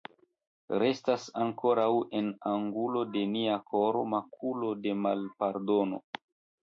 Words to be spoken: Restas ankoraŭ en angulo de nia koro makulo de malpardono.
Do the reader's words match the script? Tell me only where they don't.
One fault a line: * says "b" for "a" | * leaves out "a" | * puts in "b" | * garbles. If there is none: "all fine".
all fine